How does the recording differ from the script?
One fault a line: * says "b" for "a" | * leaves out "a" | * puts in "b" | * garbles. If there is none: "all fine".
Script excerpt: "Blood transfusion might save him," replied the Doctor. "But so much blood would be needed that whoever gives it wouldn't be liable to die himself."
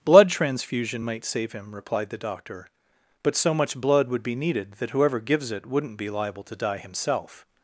all fine